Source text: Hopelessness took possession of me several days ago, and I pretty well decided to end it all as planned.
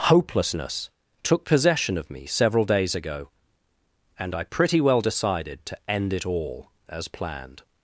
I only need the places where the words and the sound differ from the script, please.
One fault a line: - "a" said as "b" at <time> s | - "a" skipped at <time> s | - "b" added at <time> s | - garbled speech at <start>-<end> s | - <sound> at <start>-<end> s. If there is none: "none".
none